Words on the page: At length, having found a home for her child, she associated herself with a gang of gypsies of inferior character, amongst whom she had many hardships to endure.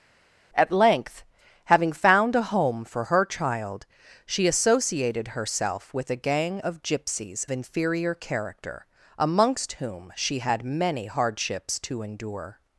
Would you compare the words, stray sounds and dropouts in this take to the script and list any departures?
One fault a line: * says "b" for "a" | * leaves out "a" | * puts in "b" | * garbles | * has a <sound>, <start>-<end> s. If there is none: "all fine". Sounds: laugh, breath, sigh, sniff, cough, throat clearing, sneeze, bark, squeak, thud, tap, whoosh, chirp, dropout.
* leaves out "of"